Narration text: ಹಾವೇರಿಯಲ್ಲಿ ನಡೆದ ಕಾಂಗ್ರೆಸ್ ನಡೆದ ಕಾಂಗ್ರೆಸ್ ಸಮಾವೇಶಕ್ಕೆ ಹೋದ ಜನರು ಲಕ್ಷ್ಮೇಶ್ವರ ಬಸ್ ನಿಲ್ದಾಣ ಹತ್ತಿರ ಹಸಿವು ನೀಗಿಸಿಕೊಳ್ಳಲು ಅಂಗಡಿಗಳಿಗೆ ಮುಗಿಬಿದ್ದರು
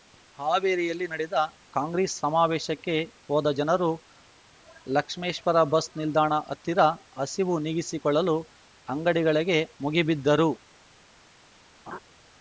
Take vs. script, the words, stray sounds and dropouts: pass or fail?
fail